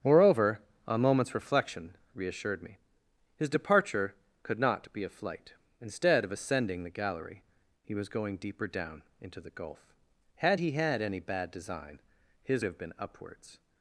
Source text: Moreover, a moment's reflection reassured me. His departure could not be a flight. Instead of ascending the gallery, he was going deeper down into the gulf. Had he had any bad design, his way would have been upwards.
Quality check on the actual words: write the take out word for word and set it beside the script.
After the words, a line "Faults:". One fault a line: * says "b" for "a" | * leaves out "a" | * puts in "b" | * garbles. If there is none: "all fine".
Moreover, a moment's reflection reassured me. His departure could not be a flight. Instead of ascending the gallery, he was going deeper down into the gulf. Had he had any bad design, his have been upwards.
Faults:
* leaves out "way would"